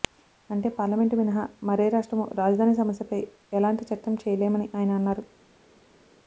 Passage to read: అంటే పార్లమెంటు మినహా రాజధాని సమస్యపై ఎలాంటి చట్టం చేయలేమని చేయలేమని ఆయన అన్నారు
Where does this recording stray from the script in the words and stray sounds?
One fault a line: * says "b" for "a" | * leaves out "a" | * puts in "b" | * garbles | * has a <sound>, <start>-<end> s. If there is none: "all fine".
* puts in "మరే రాష్ట్రమూ"
* leaves out "చేయలేమని"